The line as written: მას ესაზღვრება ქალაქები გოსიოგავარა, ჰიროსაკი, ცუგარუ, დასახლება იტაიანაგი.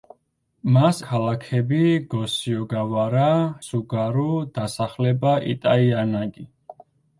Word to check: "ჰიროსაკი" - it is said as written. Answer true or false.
false